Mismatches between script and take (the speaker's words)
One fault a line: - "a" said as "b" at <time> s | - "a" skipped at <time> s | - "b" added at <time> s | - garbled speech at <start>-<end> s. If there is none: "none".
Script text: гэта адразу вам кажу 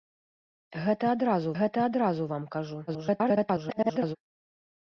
- "гэта адразу" added at 1.6 s
- garbled speech at 2.9-4.2 s